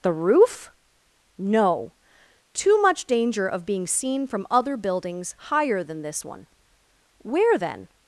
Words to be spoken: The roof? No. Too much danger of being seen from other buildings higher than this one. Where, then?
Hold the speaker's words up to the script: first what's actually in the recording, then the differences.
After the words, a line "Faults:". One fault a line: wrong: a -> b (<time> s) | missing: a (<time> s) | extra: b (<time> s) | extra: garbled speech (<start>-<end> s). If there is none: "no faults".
The roof? No. Too much danger of being seen from other buildings higher than this one. Where, then?
Faults:
no faults